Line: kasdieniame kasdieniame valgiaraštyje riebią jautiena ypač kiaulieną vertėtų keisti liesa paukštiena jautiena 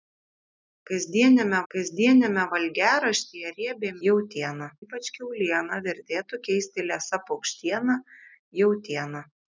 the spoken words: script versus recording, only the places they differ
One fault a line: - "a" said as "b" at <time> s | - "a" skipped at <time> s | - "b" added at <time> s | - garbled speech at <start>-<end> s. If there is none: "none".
none